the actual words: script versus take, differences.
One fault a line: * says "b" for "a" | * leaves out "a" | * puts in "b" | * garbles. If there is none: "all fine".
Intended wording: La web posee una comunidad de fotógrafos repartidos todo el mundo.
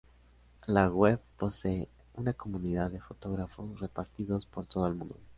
* puts in "por"